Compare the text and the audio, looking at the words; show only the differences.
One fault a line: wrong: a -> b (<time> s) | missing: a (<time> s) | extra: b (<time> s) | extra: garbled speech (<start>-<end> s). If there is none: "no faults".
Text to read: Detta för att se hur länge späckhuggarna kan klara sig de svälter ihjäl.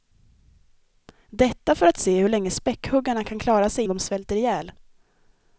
no faults